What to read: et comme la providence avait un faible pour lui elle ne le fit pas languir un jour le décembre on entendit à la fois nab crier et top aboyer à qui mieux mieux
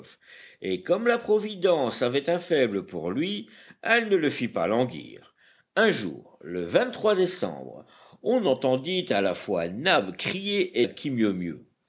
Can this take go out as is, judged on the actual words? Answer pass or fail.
fail